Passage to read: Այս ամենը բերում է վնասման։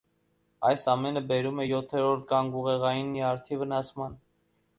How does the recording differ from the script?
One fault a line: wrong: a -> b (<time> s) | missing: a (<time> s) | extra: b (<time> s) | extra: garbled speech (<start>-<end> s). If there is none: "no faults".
extra: յոթերորդ գանգուղեղային նյարդի (1.6 s)